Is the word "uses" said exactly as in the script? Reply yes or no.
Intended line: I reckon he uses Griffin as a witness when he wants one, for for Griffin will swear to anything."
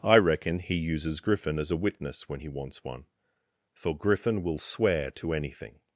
yes